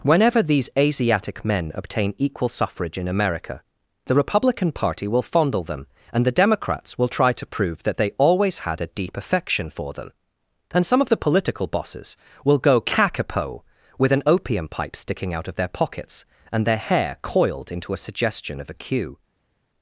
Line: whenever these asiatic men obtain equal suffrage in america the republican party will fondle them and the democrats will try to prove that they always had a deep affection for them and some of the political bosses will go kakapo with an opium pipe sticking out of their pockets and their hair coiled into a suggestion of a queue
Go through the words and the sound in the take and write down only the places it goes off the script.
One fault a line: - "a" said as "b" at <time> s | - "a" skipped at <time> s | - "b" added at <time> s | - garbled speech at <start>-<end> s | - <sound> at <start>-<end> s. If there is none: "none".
none